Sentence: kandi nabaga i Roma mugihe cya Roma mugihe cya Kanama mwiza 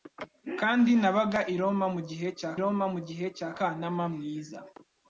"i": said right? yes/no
yes